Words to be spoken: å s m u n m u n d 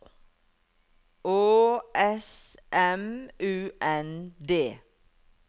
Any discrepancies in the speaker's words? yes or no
yes